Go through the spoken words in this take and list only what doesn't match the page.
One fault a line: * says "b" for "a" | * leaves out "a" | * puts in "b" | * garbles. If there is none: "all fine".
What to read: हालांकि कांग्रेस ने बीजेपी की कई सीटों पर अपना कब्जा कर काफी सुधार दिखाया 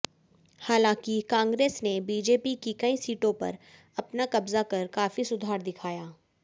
all fine